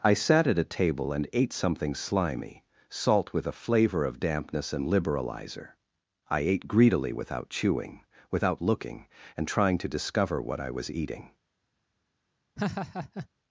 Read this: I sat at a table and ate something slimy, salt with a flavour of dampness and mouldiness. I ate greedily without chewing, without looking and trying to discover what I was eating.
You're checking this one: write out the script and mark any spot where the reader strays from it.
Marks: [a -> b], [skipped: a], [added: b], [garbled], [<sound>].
I sat at a table and ate something slimy, salt with a flavour of dampness and [mouldiness. -> liberalizer] I ate greedily without chewing, without looking and trying to discover what I was eating. [laugh]